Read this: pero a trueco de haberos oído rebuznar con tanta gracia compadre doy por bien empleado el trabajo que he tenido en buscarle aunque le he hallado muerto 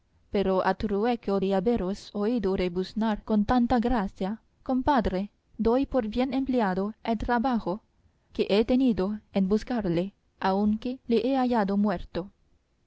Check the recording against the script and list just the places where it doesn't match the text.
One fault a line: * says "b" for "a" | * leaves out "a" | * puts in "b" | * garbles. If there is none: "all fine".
all fine